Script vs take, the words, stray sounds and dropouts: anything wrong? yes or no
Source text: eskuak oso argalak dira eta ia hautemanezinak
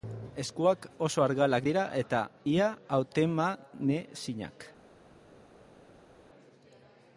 no